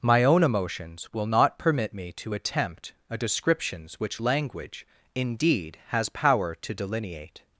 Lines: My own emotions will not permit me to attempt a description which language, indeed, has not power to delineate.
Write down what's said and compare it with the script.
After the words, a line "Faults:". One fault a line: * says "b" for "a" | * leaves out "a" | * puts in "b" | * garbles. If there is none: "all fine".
My own emotions will not permit me to attempt a descriptions which language, indeed, has power to delineate.
Faults:
* says "descriptions" for "description"
* leaves out "not"